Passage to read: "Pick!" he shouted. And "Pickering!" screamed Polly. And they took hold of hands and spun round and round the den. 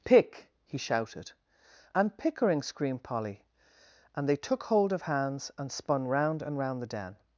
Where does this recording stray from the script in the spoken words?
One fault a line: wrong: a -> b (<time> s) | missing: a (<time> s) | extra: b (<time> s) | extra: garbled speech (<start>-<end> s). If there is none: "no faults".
no faults